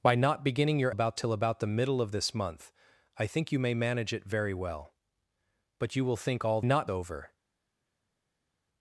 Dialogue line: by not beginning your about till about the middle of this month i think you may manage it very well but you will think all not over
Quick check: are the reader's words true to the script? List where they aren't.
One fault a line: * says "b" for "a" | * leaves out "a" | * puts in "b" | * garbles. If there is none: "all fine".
all fine